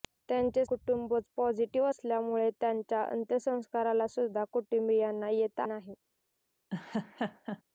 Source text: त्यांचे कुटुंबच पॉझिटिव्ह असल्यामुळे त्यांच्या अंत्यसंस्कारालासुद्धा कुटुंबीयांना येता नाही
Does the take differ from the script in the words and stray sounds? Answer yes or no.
yes